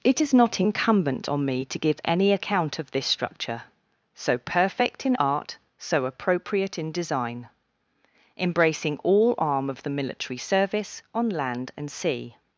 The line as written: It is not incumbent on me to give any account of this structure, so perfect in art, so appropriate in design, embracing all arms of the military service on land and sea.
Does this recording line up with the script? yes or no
no